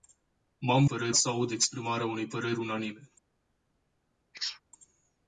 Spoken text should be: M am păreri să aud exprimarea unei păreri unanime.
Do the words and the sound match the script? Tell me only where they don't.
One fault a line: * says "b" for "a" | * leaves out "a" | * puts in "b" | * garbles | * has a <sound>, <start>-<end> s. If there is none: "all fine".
* has a sneeze, 4.3-4.6 s